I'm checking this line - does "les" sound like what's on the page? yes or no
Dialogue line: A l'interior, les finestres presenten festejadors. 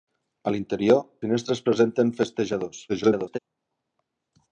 no